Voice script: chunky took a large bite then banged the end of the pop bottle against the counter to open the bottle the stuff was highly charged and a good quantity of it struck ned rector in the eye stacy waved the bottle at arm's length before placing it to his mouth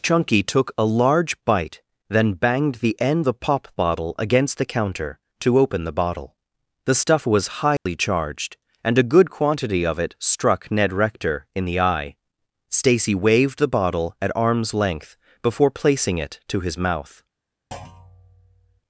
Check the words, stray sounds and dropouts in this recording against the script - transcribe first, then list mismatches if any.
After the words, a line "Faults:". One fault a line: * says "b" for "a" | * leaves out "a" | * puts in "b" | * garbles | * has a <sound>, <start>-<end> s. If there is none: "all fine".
chunky took a large bite then banged the end the pop bottle against the counter to open the bottle the stuff was highly charged and a good quantity of it struck ned rector in the eye stacy waved the bottle at arm's length before placing it to his mouth
Faults:
* leaves out "of"
* has a dropout, 7.8-7.9 s
* has a thud, 17.7-18.8 s